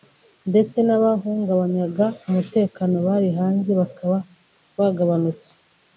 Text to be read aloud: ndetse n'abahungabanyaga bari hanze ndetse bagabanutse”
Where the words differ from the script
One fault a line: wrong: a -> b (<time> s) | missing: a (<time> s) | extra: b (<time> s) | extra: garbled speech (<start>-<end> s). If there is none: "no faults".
extra: umutekano (2.3 s)
wrong: ndetse -> bakaba (3.8 s)